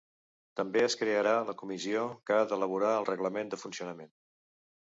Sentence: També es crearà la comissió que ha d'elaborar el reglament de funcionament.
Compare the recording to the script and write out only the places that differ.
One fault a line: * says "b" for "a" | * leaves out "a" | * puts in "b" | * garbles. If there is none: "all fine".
all fine